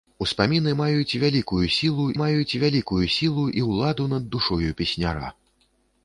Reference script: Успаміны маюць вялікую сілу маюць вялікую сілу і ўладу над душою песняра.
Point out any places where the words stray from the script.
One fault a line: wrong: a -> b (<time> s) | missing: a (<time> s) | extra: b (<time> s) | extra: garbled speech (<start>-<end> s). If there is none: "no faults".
no faults